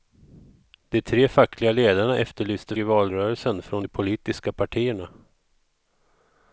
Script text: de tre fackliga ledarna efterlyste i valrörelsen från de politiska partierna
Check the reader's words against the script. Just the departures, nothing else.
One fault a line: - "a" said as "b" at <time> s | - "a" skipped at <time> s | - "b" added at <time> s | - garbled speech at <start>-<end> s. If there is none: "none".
none